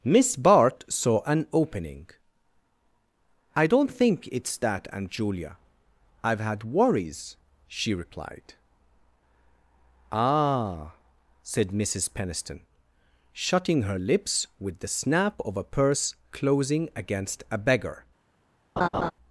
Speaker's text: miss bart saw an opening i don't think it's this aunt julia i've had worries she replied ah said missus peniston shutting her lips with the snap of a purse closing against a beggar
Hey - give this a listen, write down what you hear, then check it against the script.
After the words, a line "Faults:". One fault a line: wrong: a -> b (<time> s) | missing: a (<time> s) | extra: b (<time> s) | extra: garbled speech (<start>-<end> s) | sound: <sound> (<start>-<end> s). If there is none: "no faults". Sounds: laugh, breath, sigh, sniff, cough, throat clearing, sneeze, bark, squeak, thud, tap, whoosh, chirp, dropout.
miss bart saw an opening i don't think it's that aunt julia i've had worries she replied ah said missus peniston shutting her lips with the snap of a purse closing against a beggar
Faults:
wrong: this -> that (4.6 s)
sound: laugh (18.8-19.1 s)